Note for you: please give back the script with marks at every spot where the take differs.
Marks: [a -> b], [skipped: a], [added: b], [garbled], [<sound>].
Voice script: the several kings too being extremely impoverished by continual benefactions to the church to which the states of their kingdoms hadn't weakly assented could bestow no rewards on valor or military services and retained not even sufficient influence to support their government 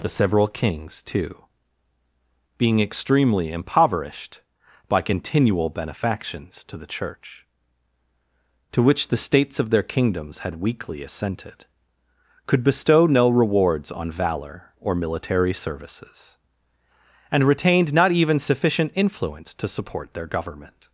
the several kings too being extremely impoverished by continual benefactions to the church to which the states of their kingdoms [hadn't -> had] weakly assented could bestow no rewards on valor or military services and retained not even sufficient influence to support their government